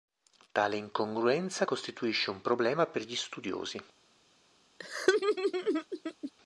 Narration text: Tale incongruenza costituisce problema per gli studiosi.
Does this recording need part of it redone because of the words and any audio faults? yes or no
yes